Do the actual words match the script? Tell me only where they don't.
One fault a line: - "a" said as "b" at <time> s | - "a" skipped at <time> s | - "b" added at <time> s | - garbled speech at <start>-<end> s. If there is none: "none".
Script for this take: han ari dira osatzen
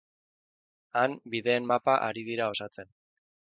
- "bideen mapa" added at 1.4 s